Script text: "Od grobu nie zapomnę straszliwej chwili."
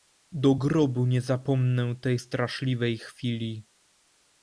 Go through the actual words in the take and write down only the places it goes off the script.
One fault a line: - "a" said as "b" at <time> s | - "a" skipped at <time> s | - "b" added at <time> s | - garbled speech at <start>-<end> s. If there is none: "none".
- "Od" said as "Do" at 0.3 s
- "tej" added at 2.0 s